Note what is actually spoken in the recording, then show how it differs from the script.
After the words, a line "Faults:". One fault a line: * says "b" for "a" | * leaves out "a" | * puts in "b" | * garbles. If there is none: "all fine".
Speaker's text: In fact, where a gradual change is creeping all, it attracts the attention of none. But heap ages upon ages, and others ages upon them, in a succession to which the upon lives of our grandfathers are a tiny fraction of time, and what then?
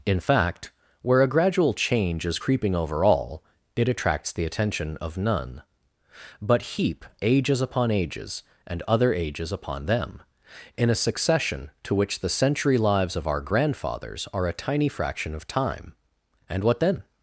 In fact, where a gradual change is creeping over all, it attracts the attention of none. But heap ages upon ages, and other ages upon them, in a succession to which the century lives of our grandfathers are a tiny fraction of time, and what then?
Faults:
* puts in "over"
* says "other" for "others"
* says "century" for "upon"